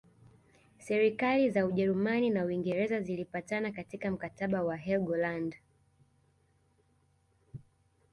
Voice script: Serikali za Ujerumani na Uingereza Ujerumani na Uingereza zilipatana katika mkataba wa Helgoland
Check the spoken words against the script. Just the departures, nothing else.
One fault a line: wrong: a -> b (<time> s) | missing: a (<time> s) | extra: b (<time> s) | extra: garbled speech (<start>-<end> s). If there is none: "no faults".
missing: Ujerumani na Uingereza (3.0 s)